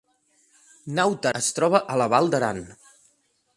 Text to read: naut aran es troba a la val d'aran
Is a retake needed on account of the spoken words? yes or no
yes